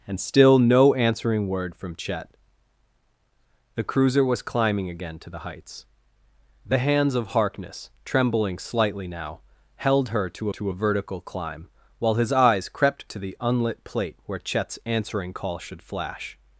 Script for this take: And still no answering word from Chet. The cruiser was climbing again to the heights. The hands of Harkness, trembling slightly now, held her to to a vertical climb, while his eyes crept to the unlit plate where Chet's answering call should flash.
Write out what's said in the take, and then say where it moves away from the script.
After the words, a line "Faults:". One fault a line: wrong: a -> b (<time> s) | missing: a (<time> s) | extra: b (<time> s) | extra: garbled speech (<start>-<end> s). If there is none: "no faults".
And still no answering word from Chet. The cruiser was climbing again to the heights. The hands of Harkness, trembling slightly now, held her to to a vertical climb, while his eyes crept to the unlit plate where Chet's answering call should flash.
Faults:
no faults